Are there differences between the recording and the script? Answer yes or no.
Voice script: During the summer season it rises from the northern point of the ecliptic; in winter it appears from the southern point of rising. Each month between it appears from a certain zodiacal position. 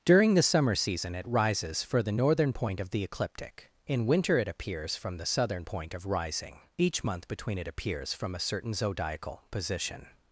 yes